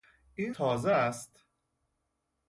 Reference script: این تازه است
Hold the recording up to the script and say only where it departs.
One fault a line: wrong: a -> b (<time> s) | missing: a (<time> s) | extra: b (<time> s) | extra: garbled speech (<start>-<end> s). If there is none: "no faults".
no faults